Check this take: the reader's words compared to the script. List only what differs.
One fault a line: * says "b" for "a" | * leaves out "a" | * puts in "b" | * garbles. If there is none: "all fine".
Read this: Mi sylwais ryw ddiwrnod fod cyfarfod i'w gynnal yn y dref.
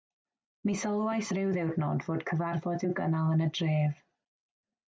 all fine